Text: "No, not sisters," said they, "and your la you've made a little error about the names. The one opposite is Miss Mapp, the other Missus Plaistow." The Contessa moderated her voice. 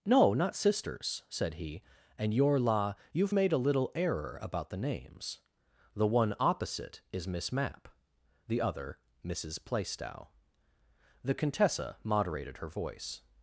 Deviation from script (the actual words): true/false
true